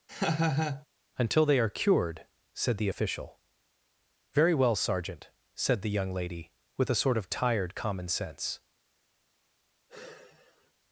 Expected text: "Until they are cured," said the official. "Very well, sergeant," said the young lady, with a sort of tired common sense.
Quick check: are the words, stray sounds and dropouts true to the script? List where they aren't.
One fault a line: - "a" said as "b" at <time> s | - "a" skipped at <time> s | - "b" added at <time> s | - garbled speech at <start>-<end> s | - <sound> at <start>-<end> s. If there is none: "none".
- laugh at 0.1-0.9 s
- sigh at 9.9-10.7 s